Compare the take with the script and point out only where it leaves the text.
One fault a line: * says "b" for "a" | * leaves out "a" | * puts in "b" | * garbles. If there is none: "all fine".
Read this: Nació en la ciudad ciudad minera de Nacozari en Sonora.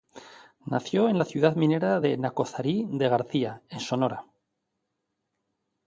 * leaves out "ciudad"
* puts in "de García"